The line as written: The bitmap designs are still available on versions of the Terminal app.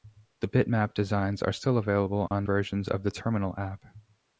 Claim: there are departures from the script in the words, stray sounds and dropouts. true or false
true